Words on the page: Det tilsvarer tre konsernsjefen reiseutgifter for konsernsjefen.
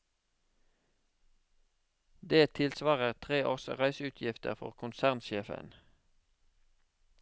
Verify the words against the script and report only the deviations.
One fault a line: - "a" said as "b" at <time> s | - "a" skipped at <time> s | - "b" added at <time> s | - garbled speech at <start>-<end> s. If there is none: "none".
- "konsernsjefen" said as "års" at 3.5 s